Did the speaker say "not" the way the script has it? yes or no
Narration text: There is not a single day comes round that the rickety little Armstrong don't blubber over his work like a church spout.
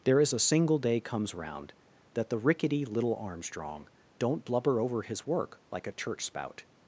no